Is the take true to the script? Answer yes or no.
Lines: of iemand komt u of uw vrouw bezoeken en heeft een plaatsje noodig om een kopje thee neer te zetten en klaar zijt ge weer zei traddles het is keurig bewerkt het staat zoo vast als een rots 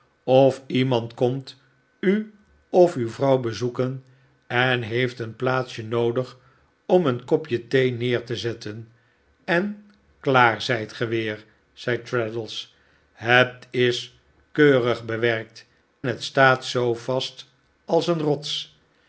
yes